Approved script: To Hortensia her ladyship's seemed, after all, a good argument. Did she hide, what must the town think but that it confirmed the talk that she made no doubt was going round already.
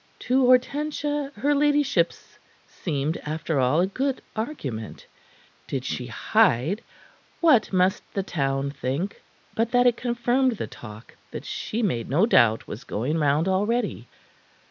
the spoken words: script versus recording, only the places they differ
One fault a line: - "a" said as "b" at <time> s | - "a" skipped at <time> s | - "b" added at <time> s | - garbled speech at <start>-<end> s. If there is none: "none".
none